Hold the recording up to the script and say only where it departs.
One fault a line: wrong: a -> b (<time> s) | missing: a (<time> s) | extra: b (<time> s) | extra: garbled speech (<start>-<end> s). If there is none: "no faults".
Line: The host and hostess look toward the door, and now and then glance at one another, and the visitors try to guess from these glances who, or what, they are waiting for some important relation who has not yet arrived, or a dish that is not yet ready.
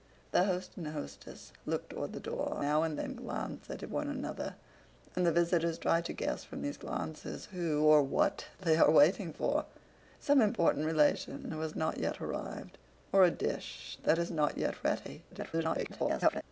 missing: and (2.6 s)
extra: garbled speech (15.3-16.4 s)